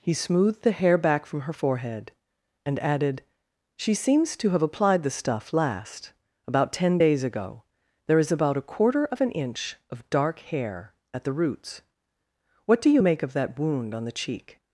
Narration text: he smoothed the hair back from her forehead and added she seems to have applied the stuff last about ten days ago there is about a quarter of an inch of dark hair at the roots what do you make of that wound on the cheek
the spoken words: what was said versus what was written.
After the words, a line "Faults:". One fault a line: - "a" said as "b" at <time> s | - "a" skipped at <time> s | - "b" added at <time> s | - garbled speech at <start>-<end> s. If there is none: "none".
he smoothed the hair back from her forehead and added she seems to have applied the stuff last about ten days ago there is about a quarter of an inch of dark hair at the roots what do you make of that wound on the cheek
Faults:
none